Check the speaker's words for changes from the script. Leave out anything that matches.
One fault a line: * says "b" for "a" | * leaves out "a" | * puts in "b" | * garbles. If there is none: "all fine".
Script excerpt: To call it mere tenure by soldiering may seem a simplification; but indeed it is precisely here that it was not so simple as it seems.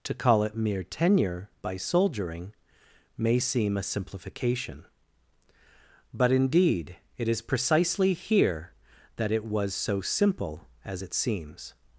* leaves out "not"